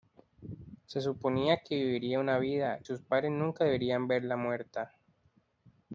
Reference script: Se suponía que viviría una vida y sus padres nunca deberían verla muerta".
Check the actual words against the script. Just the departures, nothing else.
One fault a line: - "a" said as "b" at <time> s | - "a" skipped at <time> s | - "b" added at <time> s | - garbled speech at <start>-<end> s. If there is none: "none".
- "y" skipped at 2.8 s